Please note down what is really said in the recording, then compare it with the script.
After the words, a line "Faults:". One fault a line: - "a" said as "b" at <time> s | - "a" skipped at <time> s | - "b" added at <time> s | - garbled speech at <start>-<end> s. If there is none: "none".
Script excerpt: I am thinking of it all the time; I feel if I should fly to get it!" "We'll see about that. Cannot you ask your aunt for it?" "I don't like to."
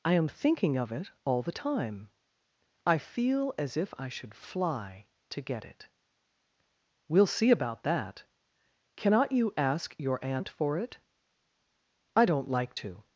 I am thinking of it all the time; I feel as if I should fly to get it!" "We'll see about that. Cannot you ask your aunt for it?" "I don't like to."
Faults:
- "as" added at 3.6 s